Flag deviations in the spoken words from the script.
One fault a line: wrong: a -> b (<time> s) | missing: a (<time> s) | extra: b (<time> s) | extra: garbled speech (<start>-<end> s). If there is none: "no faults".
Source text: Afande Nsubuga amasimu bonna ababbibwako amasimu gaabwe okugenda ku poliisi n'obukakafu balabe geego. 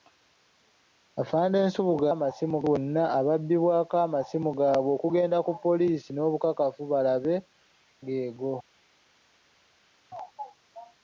no faults